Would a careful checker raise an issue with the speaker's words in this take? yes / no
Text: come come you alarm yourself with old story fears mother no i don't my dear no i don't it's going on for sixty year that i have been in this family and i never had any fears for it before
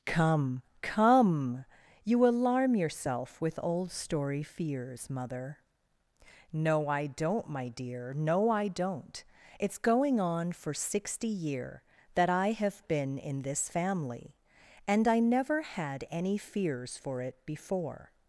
no